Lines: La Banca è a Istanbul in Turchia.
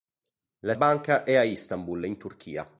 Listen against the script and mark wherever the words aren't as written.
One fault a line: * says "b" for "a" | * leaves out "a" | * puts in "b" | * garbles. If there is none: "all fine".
all fine